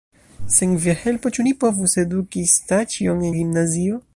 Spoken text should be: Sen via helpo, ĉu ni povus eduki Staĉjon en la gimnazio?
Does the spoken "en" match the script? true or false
false